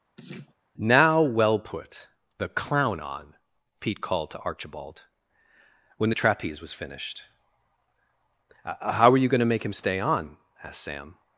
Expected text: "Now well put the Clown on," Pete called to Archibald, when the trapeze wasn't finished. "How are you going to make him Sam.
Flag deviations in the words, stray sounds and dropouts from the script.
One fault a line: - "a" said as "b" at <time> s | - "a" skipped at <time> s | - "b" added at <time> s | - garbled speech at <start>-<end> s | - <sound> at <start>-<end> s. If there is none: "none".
- laugh at 0.2-0.5 s
- "wasn't" said as "was" at 6.6 s
- "stay on asked" added at 9.7 s